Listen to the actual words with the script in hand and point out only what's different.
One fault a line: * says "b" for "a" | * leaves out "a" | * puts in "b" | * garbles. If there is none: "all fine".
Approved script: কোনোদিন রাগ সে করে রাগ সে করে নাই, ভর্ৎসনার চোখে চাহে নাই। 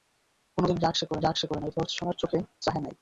all fine